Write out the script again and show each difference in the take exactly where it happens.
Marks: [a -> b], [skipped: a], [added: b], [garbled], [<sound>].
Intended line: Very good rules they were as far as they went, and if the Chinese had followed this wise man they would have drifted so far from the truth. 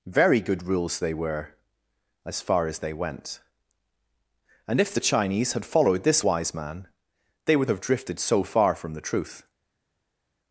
Very good rules they were as far as they went, and if the Chinese had followed this wise man they would have drifted so far from the truth.